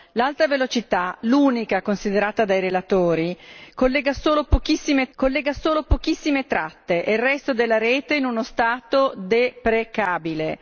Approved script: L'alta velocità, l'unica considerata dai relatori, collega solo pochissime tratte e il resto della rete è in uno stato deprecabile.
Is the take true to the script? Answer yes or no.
no